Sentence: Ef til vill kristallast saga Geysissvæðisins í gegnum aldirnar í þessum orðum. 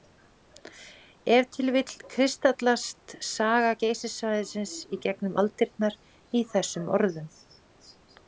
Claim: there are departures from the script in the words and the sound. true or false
false